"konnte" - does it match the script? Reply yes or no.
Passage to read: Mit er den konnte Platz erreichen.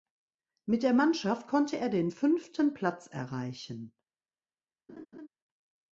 no